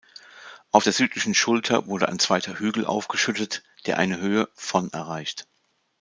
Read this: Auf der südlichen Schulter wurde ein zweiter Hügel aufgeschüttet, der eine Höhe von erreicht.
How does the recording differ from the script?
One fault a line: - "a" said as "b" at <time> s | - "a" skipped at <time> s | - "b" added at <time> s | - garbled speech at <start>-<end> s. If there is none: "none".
none